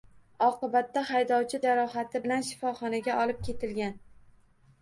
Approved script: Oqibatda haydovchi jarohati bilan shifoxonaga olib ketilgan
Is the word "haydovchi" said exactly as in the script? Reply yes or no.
yes